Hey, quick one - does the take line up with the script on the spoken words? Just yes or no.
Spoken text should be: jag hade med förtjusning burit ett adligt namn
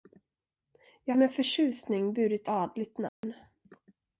no